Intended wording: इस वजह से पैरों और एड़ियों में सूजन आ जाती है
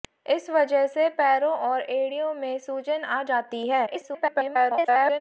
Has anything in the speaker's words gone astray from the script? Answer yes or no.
yes